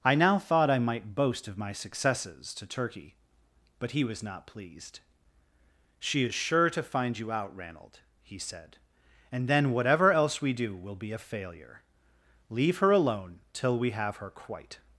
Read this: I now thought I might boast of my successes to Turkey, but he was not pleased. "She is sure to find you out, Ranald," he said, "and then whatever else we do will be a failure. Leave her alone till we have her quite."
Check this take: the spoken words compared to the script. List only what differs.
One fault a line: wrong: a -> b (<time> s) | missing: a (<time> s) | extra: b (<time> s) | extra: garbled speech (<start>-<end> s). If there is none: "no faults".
no faults